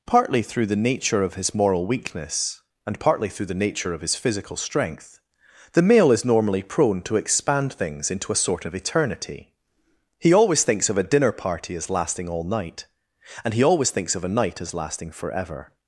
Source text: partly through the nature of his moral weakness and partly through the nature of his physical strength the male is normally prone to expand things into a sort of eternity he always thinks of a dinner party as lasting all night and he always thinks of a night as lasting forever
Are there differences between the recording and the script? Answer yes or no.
no